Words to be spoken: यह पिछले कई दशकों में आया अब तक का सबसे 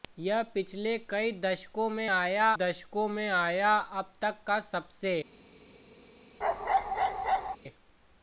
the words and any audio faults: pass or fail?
fail